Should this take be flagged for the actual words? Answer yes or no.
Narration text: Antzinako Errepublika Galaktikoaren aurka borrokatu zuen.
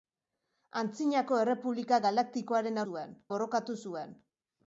yes